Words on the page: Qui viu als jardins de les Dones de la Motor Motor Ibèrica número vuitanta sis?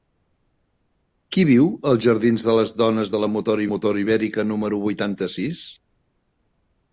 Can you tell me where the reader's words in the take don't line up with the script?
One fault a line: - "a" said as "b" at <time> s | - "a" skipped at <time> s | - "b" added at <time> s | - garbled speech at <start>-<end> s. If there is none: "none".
none